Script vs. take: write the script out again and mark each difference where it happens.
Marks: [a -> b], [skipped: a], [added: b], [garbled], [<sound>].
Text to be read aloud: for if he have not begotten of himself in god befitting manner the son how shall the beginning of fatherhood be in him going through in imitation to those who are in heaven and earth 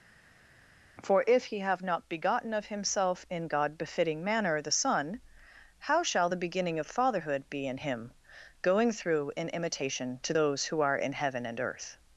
for if he have not begotten of himself in god befitting manner the son how shall the beginning of fatherhood be in him going through in imitation to those who are in heaven and earth